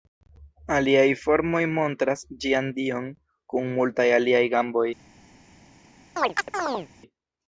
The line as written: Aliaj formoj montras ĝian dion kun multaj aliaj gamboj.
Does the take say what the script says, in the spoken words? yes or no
yes